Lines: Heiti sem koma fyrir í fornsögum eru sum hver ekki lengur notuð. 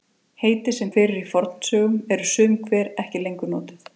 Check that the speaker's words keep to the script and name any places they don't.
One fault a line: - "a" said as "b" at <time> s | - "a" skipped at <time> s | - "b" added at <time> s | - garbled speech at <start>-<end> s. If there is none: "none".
- "koma" skipped at 0.9 s